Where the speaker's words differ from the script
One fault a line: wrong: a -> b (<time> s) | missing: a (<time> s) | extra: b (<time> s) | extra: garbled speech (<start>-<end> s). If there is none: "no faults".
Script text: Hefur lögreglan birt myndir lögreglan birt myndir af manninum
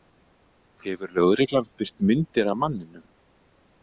missing: lögreglan birt myndir (2.5 s)